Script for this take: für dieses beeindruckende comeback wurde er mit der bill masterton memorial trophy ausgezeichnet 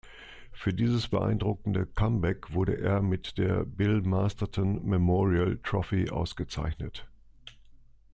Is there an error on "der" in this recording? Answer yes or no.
no